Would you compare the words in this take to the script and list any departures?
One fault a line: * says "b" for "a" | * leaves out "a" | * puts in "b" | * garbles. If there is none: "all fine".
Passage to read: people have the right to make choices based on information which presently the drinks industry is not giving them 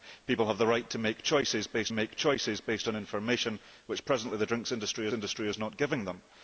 * puts in "make choices based"
* puts in "industry"